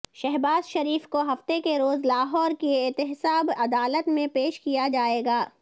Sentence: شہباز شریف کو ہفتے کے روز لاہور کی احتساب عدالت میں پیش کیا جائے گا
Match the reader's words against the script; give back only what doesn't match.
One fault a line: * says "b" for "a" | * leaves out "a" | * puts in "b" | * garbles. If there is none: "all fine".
all fine